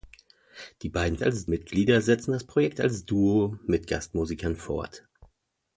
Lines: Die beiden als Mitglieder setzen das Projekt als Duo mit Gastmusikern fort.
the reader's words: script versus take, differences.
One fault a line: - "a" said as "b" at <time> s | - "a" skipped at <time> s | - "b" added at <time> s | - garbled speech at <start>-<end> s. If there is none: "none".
none